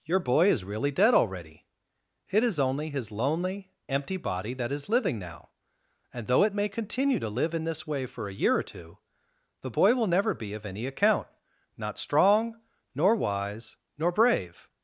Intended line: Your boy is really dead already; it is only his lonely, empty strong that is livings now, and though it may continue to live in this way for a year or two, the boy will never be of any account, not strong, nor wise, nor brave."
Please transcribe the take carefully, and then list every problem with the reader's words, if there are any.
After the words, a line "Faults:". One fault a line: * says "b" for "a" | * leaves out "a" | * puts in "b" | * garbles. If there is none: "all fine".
Your boy is really dead already; it is only his lonely, empty body that is living now, and though it may continue to live in this way for a year or two, the boy will never be of any account, not strong, nor wise, nor brave."
Faults:
* says "body" for "strong"
* says "living" for "livings"